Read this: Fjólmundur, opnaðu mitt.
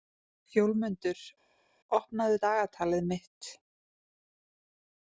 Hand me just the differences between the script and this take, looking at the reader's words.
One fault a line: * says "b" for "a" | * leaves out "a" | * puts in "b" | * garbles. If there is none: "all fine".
* puts in "dagatalið"